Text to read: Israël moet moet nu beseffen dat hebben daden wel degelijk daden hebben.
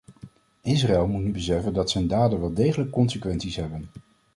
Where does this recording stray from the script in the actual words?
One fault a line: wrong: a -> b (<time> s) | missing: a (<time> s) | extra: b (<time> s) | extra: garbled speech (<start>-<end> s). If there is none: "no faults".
missing: moet (1.2 s)
wrong: hebben -> zijn (1.9 s)
wrong: daden -> consequenties (2.9 s)